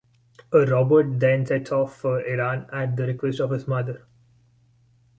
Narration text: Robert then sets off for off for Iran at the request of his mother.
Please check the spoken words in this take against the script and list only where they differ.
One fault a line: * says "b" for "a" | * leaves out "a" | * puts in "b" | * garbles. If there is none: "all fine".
* leaves out "off for"